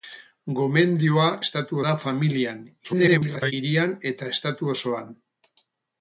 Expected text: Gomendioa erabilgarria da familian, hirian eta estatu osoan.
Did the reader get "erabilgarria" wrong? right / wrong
wrong